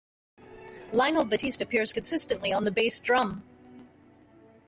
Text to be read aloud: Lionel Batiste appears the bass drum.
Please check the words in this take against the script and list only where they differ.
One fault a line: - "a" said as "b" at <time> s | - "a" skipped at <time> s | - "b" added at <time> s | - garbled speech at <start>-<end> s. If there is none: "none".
- "consistently on" added at 1.9 s